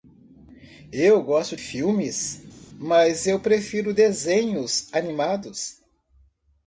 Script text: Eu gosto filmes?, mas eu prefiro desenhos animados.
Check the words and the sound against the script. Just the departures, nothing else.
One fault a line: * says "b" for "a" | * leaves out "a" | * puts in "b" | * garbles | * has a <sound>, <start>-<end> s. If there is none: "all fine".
all fine